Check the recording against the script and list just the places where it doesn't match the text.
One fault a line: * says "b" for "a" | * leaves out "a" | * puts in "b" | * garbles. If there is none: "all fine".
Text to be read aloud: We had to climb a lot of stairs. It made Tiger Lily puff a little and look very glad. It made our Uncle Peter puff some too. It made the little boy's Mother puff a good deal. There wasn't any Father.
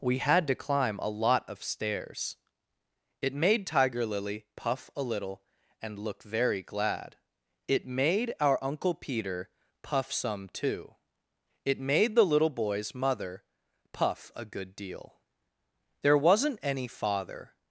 all fine